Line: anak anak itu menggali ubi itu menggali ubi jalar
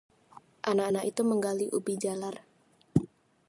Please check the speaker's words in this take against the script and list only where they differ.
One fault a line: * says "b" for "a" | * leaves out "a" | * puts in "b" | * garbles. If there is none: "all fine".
* leaves out "itu menggali ubi"